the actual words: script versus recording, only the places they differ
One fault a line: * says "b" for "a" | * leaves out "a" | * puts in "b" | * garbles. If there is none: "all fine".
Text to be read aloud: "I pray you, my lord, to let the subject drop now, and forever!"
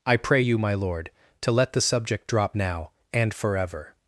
all fine